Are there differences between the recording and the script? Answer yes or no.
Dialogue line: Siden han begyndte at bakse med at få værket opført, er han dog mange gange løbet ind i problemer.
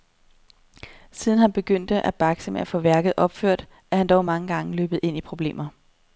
no